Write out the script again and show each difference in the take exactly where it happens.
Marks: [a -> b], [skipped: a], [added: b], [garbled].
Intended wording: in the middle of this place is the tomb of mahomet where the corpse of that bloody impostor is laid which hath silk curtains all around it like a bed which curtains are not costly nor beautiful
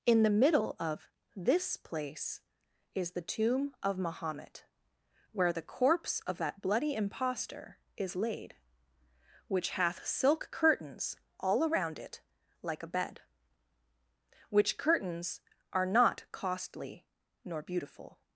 in the middle of this place is the tomb of mahomet where the corpse of that bloody impostor is laid which hath silk curtains all around it like a bed which curtains are not costly nor beautiful